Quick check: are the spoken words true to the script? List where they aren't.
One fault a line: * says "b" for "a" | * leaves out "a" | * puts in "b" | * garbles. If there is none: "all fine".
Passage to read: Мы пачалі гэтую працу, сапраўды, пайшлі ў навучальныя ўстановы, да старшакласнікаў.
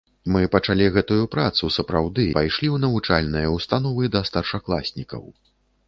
all fine